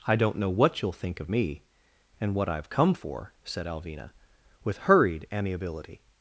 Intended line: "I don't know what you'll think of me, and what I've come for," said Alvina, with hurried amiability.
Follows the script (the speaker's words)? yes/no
yes